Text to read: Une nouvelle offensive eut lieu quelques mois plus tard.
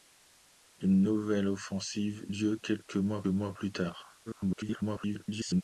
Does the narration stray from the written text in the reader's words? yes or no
yes